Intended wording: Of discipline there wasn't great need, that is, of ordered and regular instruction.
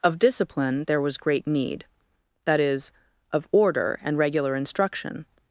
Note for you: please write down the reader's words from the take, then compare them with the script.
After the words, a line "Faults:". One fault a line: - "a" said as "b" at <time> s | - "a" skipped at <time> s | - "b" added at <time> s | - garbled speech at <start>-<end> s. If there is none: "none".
Of discipline there was great need, that is, of order and regular instruction.
Faults:
- "wasn't" said as "was" at 1.0 s
- "ordered" said as "order" at 3.5 s